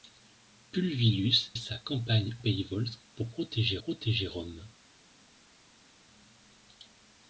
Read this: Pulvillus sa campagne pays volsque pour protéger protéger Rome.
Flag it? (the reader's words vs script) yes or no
no